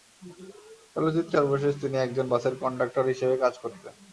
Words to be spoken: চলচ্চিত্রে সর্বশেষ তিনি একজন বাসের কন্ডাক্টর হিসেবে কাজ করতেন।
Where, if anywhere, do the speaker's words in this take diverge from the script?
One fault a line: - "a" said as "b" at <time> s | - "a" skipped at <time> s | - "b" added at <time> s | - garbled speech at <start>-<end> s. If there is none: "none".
none